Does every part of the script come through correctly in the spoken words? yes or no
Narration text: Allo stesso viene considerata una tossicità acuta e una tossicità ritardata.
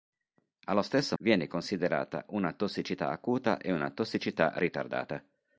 yes